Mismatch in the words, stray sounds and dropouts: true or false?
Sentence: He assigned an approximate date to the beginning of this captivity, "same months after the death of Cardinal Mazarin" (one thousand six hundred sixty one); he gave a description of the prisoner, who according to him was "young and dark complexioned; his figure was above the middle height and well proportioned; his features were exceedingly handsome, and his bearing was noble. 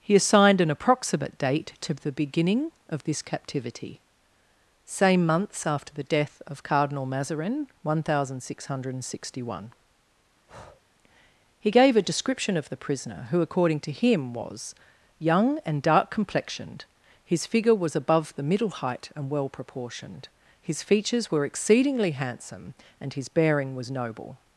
true